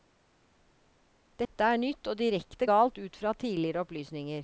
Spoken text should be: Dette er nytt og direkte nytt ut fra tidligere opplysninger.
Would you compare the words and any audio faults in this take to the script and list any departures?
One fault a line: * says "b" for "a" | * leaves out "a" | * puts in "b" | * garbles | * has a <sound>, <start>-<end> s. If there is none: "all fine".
* has a dropout, 1.4-1.5 s
* says "galt" for "nytt"